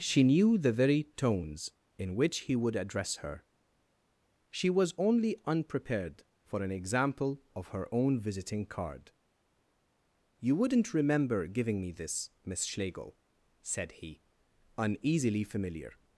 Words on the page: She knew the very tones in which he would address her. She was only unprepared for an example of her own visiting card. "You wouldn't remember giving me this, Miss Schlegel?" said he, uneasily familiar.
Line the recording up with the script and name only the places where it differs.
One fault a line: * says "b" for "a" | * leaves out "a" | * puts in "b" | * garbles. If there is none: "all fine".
all fine